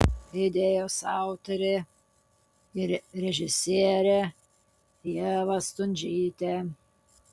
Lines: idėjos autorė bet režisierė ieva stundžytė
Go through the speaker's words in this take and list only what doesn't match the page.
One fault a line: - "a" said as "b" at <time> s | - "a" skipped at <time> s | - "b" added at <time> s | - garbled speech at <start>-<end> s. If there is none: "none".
- "bet" said as "ir" at 2.8 s